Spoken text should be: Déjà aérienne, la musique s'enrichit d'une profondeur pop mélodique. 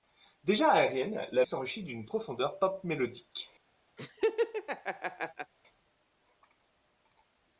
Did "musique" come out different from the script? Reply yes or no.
yes